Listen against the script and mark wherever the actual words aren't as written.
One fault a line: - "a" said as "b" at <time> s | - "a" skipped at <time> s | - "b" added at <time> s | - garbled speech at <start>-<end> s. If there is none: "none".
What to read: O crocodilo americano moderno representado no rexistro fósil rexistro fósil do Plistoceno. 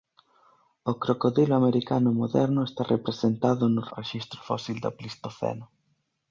- "está" added at 2.7 s
- "rexistro fósil" skipped at 4.8 s